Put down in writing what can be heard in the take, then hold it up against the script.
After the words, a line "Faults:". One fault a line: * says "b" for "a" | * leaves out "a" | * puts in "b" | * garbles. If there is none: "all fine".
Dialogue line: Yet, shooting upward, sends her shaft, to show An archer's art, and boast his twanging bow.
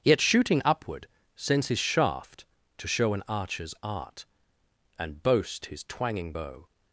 Yet, shooting upward, sends his shaft, to show An archer's art, and boast his twanging bow.
Faults:
* says "his" for "her"